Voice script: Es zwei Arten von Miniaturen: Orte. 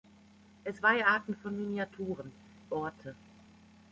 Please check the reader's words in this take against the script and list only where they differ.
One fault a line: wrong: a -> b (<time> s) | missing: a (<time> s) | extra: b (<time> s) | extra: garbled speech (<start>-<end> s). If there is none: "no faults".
no faults